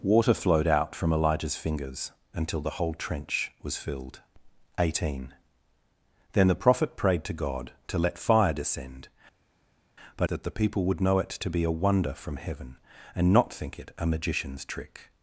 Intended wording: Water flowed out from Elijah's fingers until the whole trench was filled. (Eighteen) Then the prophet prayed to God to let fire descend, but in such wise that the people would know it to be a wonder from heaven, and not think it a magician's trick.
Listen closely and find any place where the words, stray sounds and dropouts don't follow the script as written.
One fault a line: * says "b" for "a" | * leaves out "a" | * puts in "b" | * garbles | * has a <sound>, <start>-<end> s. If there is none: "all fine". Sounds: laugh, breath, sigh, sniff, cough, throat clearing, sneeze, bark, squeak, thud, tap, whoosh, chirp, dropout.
* leaves out "in such wise"